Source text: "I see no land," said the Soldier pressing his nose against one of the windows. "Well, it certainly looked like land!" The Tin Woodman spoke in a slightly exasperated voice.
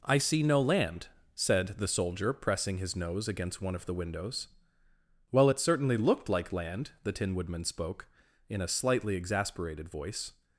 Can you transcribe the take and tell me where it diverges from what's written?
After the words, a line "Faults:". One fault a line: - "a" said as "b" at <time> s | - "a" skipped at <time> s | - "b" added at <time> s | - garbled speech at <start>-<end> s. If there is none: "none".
"I see no land," said the Soldier pressing his nose against one of the windows. "Well, it certainly looked like land!" The Tin Woodman spoke in a slightly exasperated voice.
Faults:
none